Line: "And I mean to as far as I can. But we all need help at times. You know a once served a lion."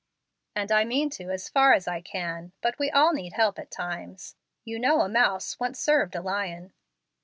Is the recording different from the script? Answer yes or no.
yes